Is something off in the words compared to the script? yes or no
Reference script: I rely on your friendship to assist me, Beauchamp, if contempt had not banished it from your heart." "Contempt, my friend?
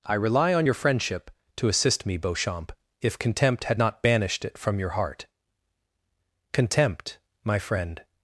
no